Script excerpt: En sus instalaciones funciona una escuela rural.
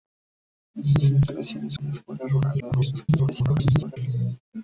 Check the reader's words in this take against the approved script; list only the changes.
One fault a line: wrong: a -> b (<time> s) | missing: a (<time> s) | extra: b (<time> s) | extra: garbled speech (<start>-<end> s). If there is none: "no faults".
missing: funciona (1.8 s)
extra: garbled speech (2.6-4.0 s)